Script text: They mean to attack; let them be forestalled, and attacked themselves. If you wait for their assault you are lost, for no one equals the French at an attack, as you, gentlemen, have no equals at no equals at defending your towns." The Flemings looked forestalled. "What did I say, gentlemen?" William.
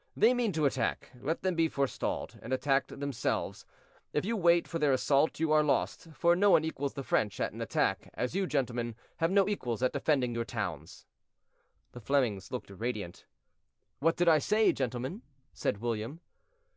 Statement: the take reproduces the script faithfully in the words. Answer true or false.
false